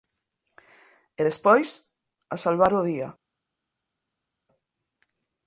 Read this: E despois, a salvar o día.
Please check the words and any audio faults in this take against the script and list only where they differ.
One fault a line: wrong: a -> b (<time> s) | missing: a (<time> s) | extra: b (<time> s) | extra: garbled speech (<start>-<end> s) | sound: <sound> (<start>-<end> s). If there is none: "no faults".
no faults